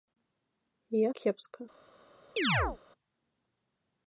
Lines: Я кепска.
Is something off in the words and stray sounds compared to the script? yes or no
yes